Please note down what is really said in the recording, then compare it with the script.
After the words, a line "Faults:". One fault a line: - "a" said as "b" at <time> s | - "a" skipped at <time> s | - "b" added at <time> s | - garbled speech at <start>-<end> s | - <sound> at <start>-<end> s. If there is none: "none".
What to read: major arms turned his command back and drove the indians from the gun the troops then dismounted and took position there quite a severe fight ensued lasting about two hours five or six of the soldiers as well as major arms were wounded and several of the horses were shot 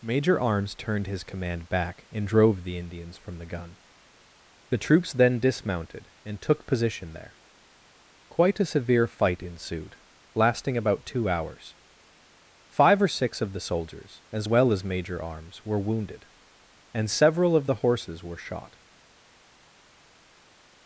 major arms turned his command back and drove the indians from the gun the troops then dismounted and took position there quite a severe fight ensued lasting about two hours five or six of the soldiers as well as major arms were wounded and several of the horses were shot
Faults:
none